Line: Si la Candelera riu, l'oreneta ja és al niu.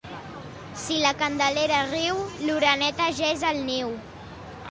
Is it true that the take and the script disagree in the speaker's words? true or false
false